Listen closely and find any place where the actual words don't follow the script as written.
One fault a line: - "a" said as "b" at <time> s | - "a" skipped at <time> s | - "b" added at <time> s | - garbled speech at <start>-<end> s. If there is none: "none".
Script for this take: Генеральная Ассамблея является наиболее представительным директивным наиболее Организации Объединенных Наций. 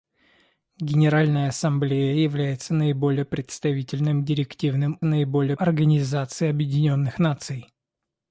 none